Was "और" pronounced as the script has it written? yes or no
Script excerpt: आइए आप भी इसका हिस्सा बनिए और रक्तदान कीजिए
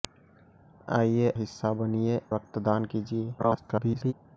no